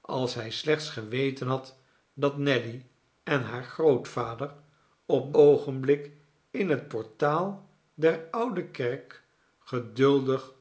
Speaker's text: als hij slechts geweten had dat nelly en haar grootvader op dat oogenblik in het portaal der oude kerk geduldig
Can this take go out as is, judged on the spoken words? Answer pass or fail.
fail